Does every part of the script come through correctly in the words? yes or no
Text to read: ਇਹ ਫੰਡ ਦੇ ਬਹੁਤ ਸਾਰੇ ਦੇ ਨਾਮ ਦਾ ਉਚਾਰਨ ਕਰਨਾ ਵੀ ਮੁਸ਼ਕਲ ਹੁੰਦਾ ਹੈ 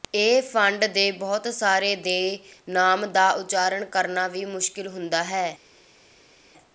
yes